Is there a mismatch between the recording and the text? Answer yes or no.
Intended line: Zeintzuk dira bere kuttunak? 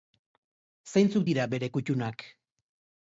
no